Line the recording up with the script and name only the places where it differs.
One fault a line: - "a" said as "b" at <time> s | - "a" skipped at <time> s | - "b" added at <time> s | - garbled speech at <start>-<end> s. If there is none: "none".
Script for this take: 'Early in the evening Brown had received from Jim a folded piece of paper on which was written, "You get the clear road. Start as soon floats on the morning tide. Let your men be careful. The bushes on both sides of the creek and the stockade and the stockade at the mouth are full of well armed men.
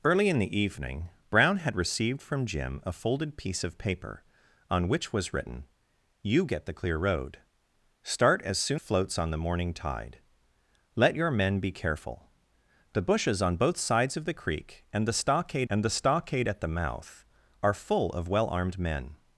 none